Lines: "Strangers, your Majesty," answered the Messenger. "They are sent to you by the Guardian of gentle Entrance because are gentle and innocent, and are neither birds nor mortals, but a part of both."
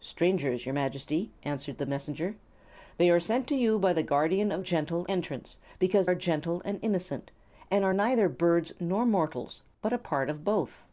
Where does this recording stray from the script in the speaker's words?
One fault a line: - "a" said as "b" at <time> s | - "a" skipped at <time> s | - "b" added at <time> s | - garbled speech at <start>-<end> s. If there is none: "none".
none